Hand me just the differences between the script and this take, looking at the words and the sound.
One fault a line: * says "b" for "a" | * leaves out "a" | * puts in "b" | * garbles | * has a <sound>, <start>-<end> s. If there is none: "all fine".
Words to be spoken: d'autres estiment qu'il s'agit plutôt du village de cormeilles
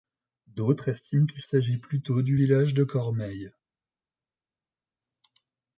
all fine